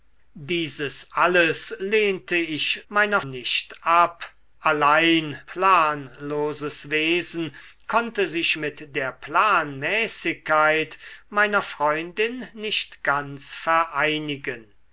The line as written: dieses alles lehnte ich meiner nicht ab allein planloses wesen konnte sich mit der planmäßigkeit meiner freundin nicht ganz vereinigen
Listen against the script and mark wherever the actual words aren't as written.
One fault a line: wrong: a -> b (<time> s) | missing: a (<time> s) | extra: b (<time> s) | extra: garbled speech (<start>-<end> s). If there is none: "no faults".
no faults